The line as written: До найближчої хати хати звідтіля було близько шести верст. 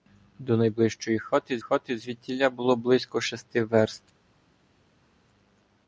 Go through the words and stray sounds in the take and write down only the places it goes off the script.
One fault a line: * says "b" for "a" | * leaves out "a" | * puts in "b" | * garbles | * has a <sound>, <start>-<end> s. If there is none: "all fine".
all fine